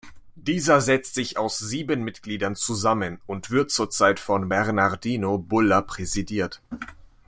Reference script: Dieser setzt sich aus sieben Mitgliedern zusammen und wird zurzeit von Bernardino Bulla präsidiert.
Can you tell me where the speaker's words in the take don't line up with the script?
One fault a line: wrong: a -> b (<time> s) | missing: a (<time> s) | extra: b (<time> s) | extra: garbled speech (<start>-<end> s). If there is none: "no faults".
no faults